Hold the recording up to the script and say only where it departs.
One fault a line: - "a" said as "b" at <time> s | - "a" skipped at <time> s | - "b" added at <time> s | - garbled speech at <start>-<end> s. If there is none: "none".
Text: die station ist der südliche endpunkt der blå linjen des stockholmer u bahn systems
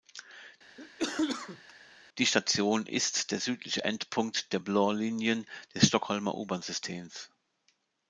none